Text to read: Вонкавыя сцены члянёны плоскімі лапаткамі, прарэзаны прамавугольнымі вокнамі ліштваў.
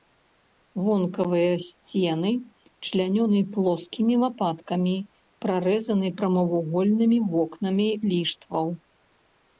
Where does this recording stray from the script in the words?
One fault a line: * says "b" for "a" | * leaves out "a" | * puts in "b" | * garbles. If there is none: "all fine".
all fine